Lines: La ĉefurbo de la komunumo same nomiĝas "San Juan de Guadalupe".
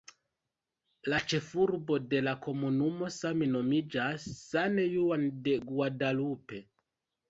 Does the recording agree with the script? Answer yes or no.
yes